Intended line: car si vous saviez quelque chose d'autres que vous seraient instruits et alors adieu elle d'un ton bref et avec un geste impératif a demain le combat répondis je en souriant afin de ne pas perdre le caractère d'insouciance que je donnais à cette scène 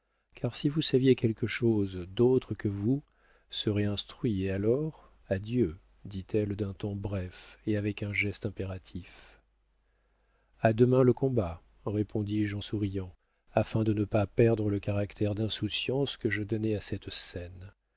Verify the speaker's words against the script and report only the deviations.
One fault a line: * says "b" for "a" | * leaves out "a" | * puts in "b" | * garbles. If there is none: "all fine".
* puts in "dit"